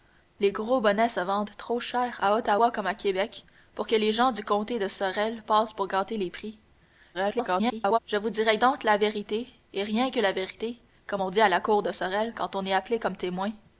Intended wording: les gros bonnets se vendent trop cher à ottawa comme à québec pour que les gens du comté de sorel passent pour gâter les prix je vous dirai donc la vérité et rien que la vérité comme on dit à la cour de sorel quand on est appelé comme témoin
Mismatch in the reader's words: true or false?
true